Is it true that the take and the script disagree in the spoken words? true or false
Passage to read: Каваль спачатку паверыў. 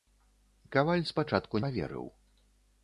false